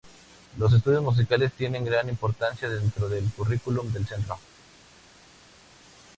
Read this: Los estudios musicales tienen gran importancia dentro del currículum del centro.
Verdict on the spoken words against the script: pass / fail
pass